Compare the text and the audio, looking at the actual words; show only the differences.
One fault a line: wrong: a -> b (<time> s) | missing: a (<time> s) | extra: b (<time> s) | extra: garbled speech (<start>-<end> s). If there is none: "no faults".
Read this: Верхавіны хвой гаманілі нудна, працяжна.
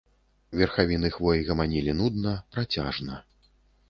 no faults